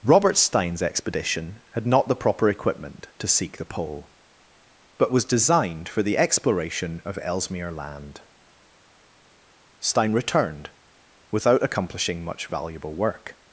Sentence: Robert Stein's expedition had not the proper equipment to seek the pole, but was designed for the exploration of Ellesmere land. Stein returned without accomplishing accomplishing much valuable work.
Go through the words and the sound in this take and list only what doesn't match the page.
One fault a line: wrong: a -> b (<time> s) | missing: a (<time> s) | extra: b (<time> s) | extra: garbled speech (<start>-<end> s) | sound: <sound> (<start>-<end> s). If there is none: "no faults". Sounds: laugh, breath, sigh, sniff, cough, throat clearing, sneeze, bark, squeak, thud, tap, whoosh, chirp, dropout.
missing: accomplishing (12.2 s)